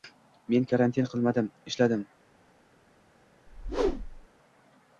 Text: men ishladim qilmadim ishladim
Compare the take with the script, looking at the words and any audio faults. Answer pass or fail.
fail